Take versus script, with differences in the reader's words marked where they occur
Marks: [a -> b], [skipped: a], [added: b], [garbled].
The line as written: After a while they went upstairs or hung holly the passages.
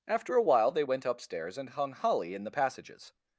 After a while they went upstairs [or -> and] hung holly [added: in] the passages.